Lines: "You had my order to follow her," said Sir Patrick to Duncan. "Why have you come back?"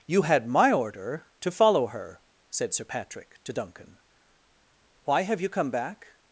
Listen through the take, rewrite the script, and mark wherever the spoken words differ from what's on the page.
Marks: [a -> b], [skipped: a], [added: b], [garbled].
"You had my order to follow her," said Sir Patrick to Duncan. "Why have you come back?"